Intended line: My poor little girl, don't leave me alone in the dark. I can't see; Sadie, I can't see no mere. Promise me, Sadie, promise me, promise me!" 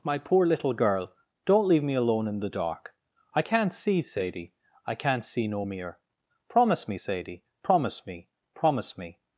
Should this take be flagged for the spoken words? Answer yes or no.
no